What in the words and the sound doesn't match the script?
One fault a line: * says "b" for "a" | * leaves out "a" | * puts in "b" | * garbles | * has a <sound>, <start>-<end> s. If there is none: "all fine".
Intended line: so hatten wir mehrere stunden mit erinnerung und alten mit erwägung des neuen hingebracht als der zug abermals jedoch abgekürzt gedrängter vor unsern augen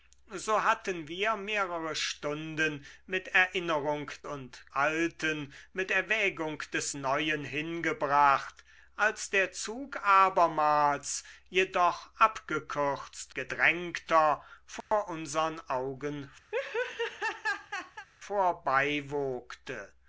* has a dropout, 14.8-14.9 s
* has a laugh, 16.5-18.1 s